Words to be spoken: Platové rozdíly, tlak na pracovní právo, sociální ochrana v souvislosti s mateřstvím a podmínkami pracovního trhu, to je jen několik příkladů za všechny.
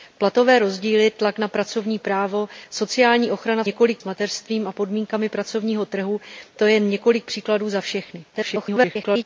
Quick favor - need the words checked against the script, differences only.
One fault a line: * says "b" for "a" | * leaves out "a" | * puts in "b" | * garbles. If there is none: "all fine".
* says "několik" for "souvislosti"
* garbles